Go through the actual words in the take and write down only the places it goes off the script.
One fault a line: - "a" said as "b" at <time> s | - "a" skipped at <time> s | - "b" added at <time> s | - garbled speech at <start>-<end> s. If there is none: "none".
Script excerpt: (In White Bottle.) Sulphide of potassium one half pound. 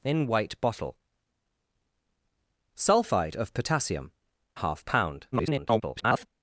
- "one" skipped at 4.1 s
- garbled speech at 5.3-6.3 s